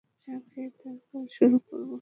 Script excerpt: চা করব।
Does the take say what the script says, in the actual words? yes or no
no